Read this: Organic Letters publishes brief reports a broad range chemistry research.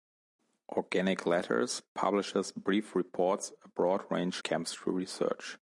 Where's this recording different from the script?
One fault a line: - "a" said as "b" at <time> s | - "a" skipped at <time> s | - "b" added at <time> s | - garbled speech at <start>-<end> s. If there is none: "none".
none